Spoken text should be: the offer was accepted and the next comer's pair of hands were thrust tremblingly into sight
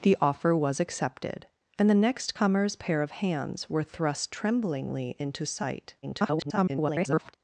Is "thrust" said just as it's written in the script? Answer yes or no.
yes